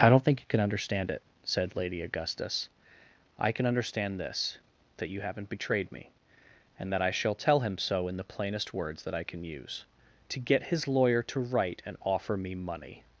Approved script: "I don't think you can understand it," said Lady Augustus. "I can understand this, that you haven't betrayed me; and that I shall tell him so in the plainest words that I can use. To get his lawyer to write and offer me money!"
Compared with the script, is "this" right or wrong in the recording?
right